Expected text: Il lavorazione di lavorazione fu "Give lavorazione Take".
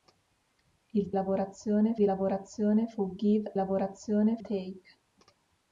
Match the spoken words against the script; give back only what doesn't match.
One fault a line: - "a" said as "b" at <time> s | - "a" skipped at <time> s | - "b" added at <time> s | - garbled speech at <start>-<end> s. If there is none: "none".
none